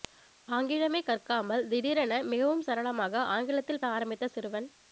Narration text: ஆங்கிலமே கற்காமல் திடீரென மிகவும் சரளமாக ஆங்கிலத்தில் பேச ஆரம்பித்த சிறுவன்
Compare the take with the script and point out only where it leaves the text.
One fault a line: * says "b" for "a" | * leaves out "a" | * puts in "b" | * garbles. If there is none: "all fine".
* leaves out "பேச"